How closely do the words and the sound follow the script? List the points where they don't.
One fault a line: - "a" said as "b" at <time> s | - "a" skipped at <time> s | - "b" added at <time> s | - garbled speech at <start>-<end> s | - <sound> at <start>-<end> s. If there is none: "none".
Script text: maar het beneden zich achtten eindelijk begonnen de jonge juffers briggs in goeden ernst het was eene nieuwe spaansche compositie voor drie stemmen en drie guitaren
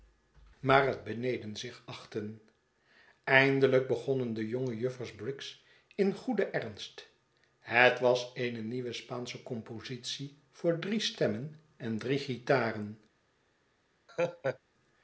- laugh at 14.1-14.6 s